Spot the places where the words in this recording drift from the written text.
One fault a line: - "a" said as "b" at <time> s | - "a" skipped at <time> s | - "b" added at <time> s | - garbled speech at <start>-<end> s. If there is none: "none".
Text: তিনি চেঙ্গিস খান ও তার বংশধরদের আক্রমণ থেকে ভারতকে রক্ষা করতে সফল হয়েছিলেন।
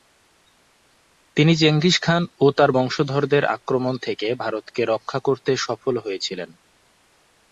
none